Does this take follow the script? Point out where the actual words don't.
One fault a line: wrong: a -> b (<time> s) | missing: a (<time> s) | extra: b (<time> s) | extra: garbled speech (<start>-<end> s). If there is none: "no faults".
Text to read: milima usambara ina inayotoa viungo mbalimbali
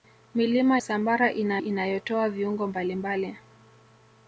no faults